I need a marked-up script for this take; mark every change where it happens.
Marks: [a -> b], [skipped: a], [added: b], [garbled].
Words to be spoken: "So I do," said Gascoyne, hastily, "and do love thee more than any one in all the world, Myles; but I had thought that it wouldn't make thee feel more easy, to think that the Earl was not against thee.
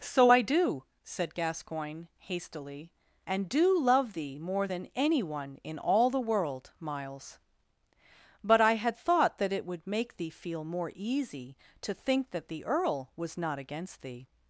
"So I do," said Gascoyne, hastily, "and do love thee more than any one in all the world, Myles; but I had thought that it [wouldn't -> would] make thee feel more easy, to think that the Earl was not against thee.